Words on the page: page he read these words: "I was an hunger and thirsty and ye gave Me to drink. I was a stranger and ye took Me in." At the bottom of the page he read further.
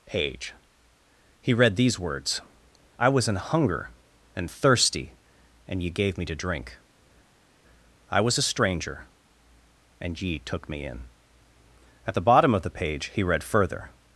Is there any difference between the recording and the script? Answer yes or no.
no